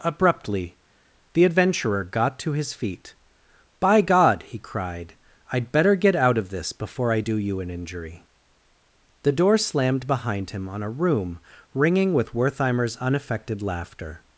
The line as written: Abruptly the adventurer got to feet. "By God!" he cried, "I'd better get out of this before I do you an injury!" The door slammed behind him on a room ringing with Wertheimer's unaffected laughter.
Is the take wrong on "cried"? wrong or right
right